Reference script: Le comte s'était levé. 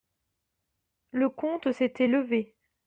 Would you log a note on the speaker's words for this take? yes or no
no